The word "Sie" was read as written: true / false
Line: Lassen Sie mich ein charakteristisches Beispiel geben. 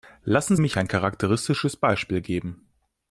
false